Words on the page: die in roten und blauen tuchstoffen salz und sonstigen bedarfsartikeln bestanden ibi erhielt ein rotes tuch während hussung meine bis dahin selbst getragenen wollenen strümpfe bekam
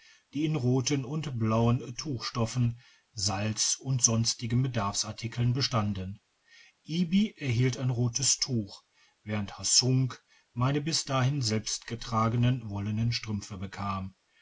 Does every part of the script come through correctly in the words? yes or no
yes